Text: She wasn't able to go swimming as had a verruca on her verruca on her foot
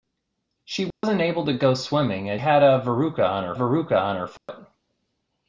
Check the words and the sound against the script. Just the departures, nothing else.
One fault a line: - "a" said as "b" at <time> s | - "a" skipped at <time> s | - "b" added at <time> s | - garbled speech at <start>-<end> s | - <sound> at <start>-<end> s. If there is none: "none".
- dropout at 0.9-1.0 s
- dropout at 4.4-4.5 s